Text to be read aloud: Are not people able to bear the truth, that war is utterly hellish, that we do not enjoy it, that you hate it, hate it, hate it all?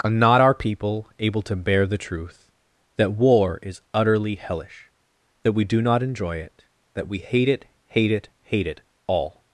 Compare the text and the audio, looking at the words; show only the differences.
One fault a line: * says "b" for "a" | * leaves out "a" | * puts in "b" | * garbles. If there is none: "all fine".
* puts in "our"
* says "we" for "you"